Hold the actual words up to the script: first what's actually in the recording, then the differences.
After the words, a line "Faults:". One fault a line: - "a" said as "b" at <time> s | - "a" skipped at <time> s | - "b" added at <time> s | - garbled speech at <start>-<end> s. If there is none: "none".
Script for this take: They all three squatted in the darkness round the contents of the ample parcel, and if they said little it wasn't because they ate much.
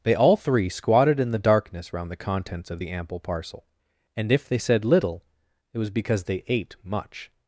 They all three squatted in the darkness round the contents of the ample parcel, and if they said little it was because they ate much.
Faults:
- "wasn't" said as "was" at 5.8 s